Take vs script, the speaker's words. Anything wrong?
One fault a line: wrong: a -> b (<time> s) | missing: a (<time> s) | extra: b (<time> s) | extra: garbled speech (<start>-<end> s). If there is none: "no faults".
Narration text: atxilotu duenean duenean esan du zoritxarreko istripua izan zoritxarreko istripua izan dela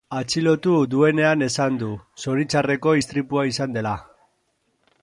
missing: duenean (1.4 s)
missing: zoritxarreko istripua izan (3.8 s)